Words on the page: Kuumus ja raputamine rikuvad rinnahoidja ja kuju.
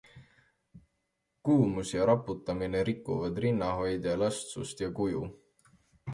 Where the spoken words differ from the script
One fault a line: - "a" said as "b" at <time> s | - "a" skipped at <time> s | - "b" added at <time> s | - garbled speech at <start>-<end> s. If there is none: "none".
- "elastsust" added at 4.2 s